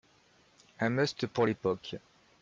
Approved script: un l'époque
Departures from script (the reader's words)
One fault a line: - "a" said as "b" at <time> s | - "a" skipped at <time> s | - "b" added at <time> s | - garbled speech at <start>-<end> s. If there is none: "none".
- "must pour" added at 0.9 s